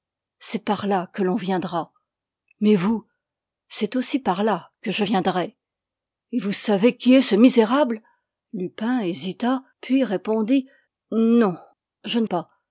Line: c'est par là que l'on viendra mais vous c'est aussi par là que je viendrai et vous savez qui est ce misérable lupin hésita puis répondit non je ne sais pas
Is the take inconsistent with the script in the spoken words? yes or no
yes